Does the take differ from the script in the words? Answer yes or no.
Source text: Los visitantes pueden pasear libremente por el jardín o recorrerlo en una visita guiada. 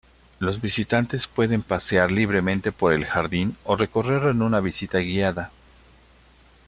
no